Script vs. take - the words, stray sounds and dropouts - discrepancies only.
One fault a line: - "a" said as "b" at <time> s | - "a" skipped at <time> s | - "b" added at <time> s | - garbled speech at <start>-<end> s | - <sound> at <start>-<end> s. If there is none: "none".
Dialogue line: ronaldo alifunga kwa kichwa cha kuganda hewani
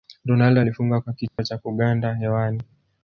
- dropout at 1.3-1.4 s